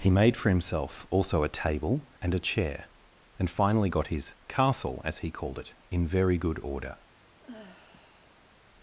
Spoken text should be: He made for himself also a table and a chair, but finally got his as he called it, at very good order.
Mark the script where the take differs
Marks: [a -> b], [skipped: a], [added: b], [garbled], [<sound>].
He made for himself also a table and a chair, [but -> and] finally got his [added: castle] as he called it, [at -> in] very good order. [sigh]